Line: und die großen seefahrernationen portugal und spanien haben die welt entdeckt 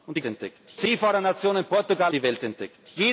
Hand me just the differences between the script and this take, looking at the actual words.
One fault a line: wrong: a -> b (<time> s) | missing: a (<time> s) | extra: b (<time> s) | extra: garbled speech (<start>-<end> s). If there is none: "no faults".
wrong: großen -> entdeckt (0.2 s)
missing: und spanien haben (2.1 s)